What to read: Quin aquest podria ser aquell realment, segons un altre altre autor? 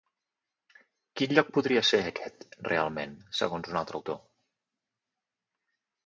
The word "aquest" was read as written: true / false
false